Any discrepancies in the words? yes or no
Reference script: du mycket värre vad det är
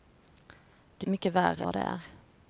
no